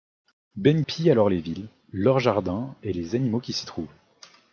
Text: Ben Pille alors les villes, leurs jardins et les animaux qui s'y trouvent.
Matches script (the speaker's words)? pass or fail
pass